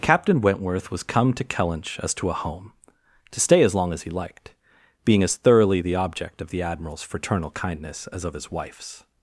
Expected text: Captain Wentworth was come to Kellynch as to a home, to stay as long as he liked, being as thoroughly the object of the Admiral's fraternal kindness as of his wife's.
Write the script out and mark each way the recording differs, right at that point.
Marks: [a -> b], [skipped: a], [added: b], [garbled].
Captain Wentworth was come to Kellynch as to a home, to stay as long as he liked, being as thoroughly the object of the Admiral's fraternal kindness as of his wife's.